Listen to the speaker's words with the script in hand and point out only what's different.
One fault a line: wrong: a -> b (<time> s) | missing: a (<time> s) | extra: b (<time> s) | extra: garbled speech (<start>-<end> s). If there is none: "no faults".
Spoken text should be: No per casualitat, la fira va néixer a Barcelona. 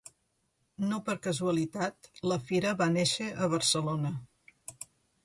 no faults